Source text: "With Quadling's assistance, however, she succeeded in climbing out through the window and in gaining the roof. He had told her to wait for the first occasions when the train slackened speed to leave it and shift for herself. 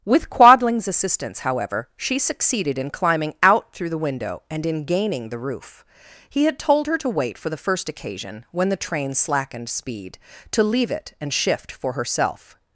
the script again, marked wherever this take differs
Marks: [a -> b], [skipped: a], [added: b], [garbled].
"With Quadling's assistance, however, she succeeded in climbing out through the window and in gaining the roof. He had told her to wait for the first [occasions -> occasion] when the train slackened speed to leave it and shift for herself.